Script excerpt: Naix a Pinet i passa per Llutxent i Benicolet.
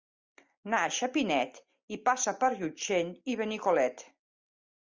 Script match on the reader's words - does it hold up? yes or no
yes